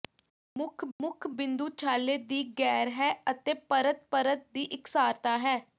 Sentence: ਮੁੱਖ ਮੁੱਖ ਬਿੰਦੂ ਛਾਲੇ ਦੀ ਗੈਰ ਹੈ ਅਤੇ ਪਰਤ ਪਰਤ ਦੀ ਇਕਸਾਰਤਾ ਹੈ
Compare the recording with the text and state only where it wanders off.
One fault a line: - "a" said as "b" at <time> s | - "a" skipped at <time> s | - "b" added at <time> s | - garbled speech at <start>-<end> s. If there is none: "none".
none